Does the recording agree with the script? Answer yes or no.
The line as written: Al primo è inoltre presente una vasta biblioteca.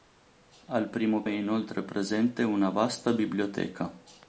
yes